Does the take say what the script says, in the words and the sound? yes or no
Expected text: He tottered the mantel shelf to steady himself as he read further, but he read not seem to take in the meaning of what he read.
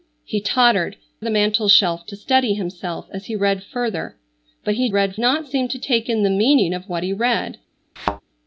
no